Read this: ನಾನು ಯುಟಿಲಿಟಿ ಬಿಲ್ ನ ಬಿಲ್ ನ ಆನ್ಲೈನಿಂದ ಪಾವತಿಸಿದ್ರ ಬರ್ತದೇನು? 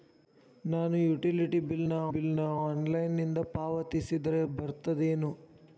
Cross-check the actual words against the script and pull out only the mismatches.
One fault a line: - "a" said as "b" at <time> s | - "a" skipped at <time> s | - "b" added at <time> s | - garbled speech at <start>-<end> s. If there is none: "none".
none